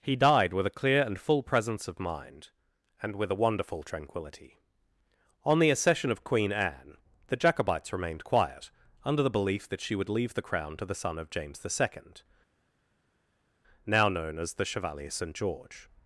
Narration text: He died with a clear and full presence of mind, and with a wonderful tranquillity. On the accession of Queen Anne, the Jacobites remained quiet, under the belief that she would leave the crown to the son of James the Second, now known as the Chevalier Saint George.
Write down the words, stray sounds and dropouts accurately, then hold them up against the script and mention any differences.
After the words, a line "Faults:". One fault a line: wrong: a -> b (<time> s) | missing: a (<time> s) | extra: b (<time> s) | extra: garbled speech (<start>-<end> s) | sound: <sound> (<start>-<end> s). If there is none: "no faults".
He died with a clear and full presence of mind, and with a wonderful tranquillity. On the accession of Queen Anne, the Jacobites remained quiet, under the belief that she would leave the crown to the son of James the Second, now known as the Chevalier Saint George.
Faults:
no faults